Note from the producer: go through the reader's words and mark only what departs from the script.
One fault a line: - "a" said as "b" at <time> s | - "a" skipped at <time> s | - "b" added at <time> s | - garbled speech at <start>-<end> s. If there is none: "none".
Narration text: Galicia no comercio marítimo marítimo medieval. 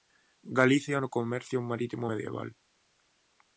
- "marítimo" skipped at 2.1 s